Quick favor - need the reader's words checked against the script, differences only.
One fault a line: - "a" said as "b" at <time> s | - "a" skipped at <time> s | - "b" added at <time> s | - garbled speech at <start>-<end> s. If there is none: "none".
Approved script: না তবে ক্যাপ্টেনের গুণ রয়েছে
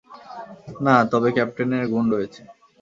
none